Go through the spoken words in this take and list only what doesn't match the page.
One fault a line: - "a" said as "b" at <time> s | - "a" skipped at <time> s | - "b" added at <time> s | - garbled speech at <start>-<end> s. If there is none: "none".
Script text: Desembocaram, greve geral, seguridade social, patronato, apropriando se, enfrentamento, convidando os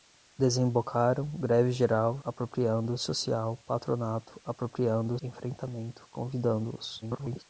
- "seguridade" said as "apropriando" at 2.2 s
- "se" skipped at 5.2 s
- garbled speech at 7.0-7.4 s